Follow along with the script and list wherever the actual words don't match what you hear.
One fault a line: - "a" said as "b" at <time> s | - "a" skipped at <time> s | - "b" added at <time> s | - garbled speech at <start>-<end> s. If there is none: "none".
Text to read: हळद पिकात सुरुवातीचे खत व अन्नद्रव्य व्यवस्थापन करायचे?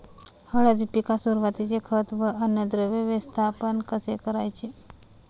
- "कसे" added at 3.9 s